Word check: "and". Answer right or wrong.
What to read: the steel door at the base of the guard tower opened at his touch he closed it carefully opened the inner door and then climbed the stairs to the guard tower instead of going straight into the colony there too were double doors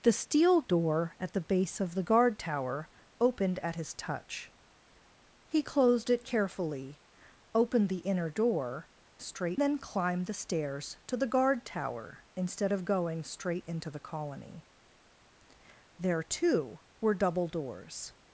wrong